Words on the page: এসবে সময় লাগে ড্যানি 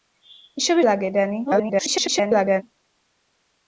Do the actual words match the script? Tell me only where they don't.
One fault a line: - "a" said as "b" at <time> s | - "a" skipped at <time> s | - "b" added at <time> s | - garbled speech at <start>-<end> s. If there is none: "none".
- "সময়" skipped at 0.8 s
- garbled speech at 1.5-2.6 s